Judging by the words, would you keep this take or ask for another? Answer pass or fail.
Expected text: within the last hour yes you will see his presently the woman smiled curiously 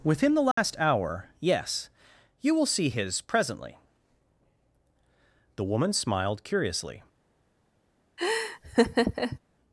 pass